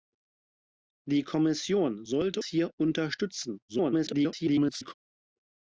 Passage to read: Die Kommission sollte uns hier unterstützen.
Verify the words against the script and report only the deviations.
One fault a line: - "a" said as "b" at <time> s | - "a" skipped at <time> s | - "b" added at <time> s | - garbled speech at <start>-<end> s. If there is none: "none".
- "uns" skipped at 2.4 s
- garbled speech at 3.7-4.9 s